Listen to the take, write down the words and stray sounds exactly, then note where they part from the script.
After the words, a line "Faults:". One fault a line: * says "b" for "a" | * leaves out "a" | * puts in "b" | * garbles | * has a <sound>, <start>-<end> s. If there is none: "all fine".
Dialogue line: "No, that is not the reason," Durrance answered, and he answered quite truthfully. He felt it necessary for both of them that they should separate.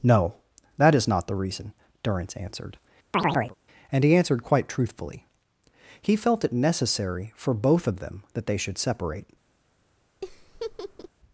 "No, that is not the reason," Durrance answered, and he answered quite truthfully. He felt it necessary for both of them that they should separate.
Faults:
* has a chirp, 3.1-3.6 s
* has a laugh, 10.2-11.1 s